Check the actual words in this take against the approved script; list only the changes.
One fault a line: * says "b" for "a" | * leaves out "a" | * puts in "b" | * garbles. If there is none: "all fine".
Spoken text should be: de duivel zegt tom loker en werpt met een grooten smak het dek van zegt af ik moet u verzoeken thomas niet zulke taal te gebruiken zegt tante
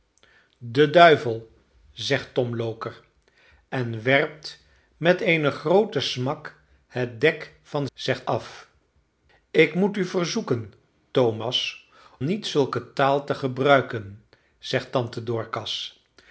all fine